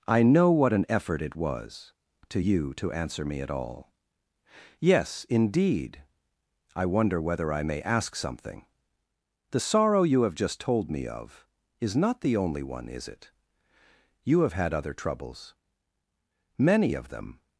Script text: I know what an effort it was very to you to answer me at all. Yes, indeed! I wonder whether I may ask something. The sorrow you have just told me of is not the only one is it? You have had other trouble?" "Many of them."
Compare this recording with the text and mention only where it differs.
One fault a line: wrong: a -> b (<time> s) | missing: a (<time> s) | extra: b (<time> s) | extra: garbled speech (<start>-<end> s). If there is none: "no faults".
missing: very (1.9 s)
wrong: trouble -> troubles (14.9 s)